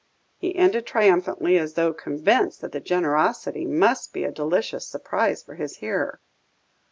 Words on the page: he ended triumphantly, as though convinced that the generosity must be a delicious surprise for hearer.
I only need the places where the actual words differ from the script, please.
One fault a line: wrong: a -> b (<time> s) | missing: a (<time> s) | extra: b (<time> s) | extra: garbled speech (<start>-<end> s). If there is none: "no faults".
extra: his (5.5 s)